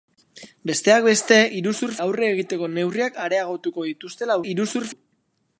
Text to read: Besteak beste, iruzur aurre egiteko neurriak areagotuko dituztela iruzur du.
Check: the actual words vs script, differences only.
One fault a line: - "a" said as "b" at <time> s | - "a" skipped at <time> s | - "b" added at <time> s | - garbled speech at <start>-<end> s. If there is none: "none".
none